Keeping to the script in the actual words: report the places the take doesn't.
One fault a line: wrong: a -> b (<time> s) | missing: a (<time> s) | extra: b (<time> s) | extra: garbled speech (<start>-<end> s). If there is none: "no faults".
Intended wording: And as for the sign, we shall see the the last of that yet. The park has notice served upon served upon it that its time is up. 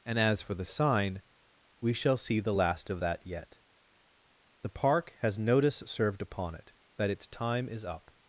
missing: the (2.5 s)
missing: served upon (6.5 s)